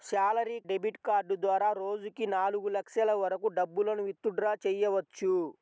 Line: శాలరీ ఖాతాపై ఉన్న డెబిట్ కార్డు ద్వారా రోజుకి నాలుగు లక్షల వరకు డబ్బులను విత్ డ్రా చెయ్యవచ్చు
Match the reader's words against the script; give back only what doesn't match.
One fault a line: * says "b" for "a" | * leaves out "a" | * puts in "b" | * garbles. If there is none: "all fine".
* leaves out "ఖాతాపై ఉన్న"